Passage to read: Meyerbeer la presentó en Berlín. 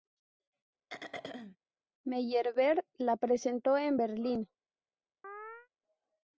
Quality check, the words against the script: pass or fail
pass